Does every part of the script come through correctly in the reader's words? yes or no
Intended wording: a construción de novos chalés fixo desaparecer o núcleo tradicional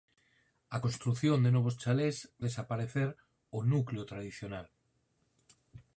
no